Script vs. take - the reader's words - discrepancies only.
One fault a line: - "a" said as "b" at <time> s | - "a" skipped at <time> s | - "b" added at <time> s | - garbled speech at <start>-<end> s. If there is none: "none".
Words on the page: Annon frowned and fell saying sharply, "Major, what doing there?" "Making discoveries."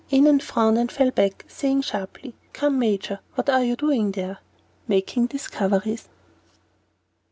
- "back" added at 1.1 s
- "Come" added at 2.5 s
- "are you" added at 3.5 s